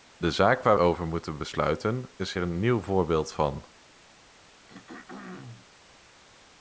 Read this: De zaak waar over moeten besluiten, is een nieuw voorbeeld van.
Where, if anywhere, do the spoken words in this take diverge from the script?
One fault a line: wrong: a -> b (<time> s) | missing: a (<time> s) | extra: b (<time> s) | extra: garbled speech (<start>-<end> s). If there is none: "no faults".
no faults